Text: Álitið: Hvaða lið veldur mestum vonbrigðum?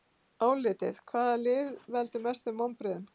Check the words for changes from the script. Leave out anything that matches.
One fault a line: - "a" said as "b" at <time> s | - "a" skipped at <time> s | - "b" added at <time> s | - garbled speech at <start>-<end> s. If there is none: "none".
none